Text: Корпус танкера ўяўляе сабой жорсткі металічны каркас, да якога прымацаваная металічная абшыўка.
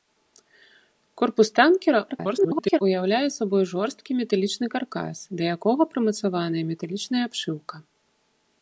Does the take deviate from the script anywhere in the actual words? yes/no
yes